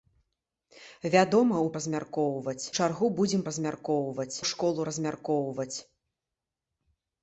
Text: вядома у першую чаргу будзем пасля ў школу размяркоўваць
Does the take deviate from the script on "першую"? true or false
true